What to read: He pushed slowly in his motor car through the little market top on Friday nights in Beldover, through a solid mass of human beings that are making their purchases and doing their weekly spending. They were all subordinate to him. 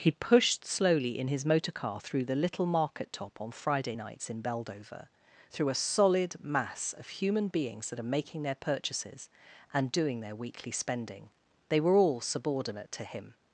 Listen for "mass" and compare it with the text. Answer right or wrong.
right